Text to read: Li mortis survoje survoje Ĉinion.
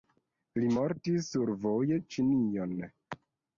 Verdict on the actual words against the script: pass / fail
fail